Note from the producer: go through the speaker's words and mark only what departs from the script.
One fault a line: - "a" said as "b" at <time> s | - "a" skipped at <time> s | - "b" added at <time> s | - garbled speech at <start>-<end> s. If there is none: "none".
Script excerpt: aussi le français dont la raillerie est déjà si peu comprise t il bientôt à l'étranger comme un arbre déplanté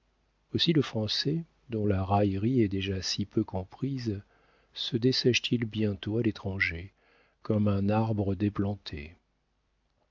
- "se dessèche" added at 4.7 s